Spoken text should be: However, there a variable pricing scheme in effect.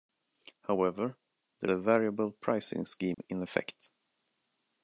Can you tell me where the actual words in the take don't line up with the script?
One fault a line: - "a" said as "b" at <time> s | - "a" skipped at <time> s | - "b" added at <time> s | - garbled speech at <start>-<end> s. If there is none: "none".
none